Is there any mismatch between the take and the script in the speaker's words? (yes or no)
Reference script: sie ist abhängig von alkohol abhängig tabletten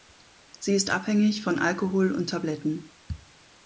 yes